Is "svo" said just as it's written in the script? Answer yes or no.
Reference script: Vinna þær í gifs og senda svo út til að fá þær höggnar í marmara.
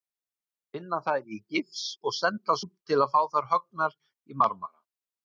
no